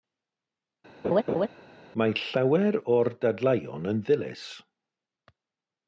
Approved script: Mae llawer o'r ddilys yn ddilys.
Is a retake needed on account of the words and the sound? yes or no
yes